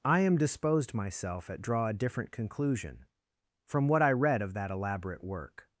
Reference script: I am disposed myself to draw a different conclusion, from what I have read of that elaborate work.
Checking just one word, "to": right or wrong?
wrong